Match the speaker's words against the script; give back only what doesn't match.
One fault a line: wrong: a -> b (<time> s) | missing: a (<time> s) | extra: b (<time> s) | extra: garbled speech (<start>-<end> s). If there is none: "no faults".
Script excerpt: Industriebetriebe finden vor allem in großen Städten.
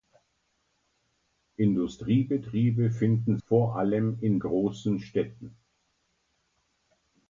no faults